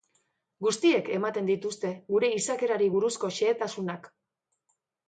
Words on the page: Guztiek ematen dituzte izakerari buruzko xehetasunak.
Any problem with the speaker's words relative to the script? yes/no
yes